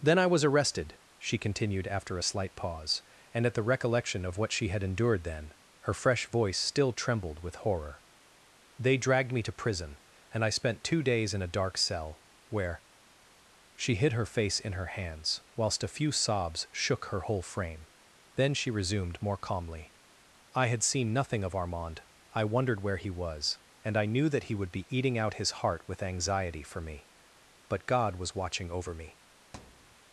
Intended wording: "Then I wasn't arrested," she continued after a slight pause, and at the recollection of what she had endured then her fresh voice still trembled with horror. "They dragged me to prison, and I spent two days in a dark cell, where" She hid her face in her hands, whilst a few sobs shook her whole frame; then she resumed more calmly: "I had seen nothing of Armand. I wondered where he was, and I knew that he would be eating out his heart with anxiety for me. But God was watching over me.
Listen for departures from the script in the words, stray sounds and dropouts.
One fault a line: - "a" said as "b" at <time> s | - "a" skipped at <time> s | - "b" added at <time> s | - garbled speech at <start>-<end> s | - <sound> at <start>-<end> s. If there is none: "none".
- "wasn't" said as "was" at 0.3 s
- thud at 29.5-30.0 s